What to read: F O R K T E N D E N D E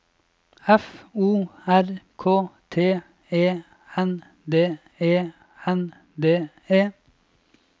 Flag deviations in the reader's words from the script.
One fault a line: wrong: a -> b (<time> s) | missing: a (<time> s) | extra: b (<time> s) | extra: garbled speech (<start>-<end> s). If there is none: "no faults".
no faults